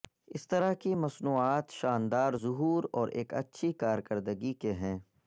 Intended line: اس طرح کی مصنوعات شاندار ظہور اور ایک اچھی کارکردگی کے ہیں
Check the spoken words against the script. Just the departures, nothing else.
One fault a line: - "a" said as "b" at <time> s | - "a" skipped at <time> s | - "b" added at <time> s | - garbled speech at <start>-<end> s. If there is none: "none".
none